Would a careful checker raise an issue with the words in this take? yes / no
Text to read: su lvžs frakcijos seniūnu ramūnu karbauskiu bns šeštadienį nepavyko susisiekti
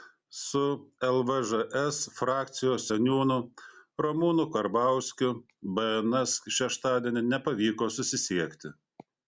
no